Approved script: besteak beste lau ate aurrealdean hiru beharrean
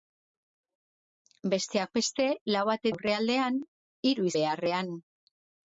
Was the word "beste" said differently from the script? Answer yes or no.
no